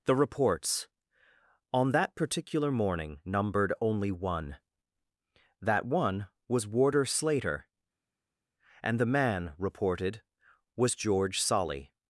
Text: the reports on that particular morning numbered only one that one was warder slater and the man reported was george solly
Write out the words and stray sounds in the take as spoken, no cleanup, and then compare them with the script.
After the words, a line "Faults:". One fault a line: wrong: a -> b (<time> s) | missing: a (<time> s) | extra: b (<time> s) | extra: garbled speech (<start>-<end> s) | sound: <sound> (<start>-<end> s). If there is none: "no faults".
the reports on that particular morning numbered only one that one was warder slater and the man reported was george solly
Faults:
no faults